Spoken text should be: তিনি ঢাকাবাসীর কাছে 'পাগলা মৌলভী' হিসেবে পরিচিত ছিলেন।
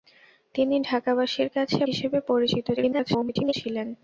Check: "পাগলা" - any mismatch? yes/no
yes